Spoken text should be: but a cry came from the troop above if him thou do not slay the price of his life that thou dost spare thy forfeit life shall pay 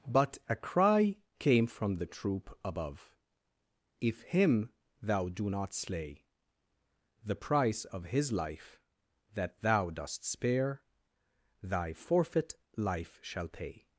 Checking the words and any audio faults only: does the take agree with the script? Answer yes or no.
yes